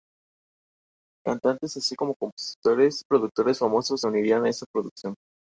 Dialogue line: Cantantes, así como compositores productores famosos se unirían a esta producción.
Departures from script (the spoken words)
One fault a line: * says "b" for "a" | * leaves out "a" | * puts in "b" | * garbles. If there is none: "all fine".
all fine